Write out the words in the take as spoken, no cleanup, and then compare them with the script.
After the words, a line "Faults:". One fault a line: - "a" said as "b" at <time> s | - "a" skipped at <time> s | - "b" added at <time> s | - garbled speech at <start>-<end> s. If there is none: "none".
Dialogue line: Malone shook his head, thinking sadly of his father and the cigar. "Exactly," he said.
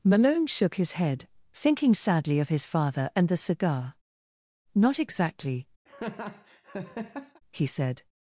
Malone shook his head, thinking sadly of his father and the cigar. "Not exactly," he said.
Faults:
- "Not" added at 4.7 s